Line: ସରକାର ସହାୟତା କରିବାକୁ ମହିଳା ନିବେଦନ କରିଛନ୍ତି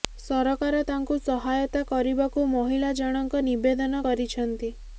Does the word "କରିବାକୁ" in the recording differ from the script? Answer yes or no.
no